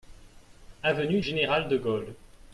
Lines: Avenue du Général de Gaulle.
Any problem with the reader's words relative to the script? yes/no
yes